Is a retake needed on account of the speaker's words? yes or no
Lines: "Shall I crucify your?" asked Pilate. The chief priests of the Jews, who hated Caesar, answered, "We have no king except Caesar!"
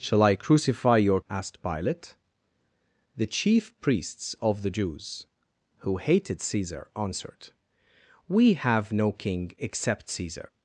no